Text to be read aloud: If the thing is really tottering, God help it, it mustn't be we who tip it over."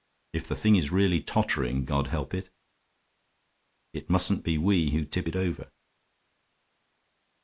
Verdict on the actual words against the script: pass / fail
pass